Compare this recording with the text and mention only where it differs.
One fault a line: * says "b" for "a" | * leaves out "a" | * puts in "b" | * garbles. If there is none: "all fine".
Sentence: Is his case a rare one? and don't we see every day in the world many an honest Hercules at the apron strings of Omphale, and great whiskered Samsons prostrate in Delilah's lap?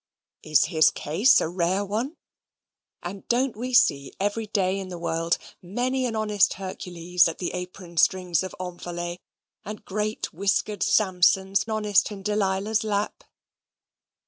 * says "honest" for "prostrate"